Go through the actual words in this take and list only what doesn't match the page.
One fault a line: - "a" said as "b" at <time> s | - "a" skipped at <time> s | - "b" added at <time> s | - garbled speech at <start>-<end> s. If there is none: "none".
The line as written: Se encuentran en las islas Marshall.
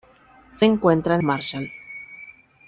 - "en las islas" skipped at 1.2 s